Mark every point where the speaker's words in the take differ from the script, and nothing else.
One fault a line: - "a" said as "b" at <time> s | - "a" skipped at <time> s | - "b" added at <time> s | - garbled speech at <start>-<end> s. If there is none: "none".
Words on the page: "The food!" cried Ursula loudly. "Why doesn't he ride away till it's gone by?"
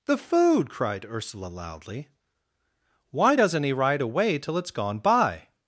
none